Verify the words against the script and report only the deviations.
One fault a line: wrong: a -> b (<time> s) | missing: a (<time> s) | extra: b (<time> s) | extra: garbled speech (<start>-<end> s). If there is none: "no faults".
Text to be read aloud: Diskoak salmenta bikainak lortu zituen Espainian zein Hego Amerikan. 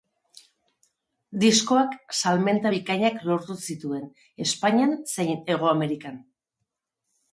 no faults